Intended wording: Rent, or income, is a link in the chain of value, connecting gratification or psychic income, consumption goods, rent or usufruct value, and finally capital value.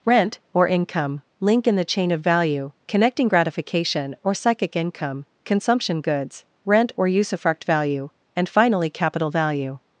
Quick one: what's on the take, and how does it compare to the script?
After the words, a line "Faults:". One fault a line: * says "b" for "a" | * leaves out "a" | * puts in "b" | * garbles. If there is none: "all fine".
Rent, or income, link in the chain of value, connecting gratification or psychic income, consumption goods, rent or usufruct value, and finally capital value.
Faults:
* leaves out "is a"